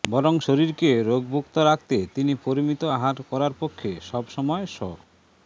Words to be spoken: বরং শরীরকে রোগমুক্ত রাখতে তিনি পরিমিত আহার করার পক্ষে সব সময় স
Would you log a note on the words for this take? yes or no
no